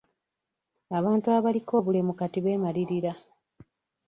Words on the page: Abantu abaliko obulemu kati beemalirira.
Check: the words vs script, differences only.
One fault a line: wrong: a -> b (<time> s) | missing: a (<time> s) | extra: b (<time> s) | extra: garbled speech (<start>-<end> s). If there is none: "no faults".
no faults